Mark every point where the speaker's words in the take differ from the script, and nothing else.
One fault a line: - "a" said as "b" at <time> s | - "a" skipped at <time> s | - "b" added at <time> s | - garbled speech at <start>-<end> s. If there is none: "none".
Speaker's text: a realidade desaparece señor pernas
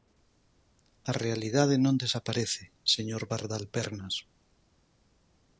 - "non" added at 1.9 s
- "pardal" added at 3.3 s